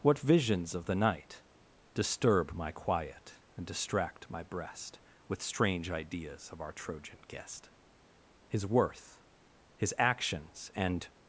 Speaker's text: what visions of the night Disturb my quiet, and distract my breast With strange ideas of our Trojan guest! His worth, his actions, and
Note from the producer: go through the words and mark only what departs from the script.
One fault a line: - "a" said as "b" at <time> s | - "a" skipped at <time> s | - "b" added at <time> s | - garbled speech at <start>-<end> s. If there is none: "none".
none